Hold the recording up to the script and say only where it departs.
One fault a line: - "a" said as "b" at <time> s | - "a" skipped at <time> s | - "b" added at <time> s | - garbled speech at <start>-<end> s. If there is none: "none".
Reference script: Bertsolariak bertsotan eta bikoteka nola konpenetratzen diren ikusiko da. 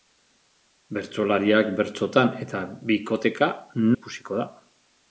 - "nola konpenetratzen diren" skipped at 3.5 s